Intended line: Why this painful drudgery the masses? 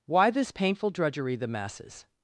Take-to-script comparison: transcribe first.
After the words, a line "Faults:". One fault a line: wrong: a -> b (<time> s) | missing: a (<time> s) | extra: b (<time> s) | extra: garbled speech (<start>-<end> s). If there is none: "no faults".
Why this painful drudgery the masses?
Faults:
no faults